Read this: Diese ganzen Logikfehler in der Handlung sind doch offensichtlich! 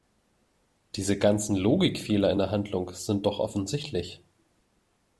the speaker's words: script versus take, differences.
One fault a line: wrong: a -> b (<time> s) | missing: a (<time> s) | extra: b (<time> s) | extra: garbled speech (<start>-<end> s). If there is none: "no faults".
no faults